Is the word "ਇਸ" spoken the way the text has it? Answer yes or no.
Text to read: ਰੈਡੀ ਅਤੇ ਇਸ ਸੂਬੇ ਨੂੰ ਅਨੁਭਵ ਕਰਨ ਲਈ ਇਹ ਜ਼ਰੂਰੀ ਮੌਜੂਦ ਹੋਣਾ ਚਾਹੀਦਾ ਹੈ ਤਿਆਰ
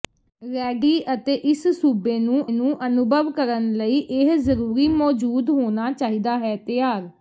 yes